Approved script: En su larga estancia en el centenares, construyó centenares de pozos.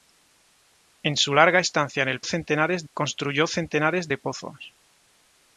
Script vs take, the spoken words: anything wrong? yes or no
no